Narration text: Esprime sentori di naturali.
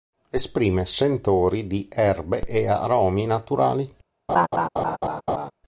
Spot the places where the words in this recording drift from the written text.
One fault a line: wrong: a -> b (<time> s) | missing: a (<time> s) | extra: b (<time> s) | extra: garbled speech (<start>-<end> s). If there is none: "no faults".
extra: erbe e aromi (1.9 s)